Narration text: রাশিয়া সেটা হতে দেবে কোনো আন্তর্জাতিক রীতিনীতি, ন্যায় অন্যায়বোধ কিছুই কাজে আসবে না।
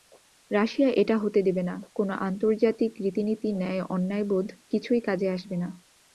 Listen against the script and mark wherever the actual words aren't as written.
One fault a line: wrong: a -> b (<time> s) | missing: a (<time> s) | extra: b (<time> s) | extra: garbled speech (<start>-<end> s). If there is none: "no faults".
wrong: সেটা -> এটা (0.9 s)
extra: না (1.6 s)